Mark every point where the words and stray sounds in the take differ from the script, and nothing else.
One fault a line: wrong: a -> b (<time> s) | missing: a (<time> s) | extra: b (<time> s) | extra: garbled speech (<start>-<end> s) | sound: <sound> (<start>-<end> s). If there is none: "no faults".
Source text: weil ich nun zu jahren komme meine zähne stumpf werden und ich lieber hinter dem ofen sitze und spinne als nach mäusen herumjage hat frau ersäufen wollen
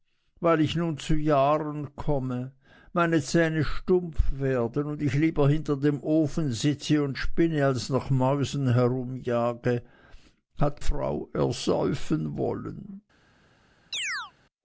sound: chirp (13.9-14.3 s)